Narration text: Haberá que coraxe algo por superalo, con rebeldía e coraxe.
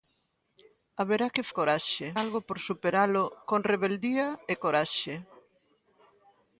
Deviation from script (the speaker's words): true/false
false